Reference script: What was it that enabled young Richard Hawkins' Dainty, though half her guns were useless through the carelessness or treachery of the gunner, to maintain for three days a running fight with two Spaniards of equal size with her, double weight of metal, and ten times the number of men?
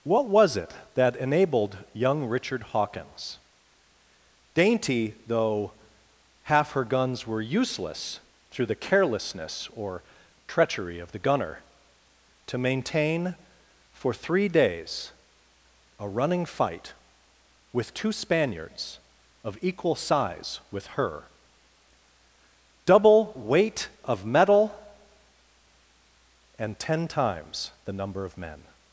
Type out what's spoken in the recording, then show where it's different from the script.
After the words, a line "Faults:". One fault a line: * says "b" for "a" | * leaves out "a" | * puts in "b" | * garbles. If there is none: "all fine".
What was it that enabled young Richard Hawkins' Dainty, though half her guns were useless through the carelessness or treachery of the gunner, to maintain for three days a running fight with two Spaniards of equal size with her, double weight of metal, and ten times the number of men?
Faults:
all fine